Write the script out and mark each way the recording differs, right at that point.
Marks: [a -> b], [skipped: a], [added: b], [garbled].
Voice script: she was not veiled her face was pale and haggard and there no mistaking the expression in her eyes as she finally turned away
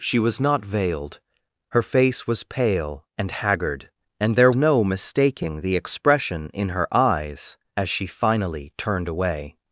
she was not veiled her face was pale and haggard and there no mistaking the expression in her eyes as she finally turned away